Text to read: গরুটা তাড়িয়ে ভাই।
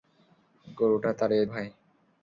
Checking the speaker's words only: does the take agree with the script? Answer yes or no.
yes